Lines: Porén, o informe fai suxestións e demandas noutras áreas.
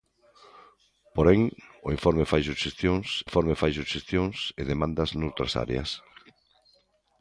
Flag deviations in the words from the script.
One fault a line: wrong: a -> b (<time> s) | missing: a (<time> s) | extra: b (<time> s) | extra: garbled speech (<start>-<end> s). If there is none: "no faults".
extra: informe fai suxestións (3.3 s)